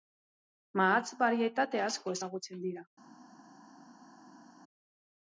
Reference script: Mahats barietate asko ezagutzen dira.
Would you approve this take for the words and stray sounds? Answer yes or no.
yes